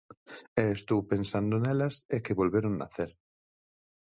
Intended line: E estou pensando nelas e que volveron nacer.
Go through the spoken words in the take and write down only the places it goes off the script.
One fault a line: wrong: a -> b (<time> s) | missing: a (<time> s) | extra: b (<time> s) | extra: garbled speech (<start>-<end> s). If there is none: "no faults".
no faults